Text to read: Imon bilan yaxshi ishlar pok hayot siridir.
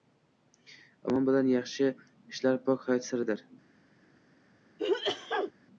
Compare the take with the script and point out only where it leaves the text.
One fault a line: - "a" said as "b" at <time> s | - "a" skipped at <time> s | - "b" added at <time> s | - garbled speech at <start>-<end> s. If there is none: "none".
none